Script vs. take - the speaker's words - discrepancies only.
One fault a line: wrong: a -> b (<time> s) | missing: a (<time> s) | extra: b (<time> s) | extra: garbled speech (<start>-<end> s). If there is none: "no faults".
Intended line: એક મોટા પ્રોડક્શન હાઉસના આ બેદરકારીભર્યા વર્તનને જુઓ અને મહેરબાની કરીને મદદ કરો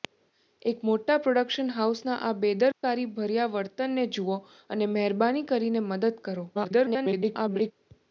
extra: garbled speech (6.5-7.7 s)